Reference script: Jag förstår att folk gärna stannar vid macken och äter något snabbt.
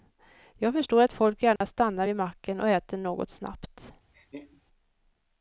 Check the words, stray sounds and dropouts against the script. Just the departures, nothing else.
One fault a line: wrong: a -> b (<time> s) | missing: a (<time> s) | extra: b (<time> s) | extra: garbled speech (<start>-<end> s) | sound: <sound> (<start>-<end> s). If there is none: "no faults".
sound: dropout (1.6-1.6 s)
sound: laugh (4.1-4.6 s)